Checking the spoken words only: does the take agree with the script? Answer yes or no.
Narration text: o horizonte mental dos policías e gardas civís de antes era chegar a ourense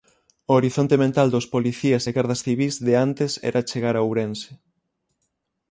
yes